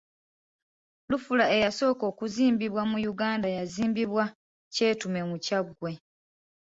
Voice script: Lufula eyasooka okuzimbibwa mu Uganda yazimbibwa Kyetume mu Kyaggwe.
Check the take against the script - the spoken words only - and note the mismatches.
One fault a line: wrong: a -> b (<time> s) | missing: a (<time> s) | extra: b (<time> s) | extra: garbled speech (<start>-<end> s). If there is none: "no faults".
no faults